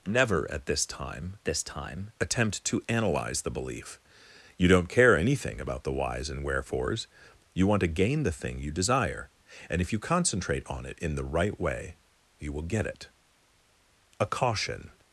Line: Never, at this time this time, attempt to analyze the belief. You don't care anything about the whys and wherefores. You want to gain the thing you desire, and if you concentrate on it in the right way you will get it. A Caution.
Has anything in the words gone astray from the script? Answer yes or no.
no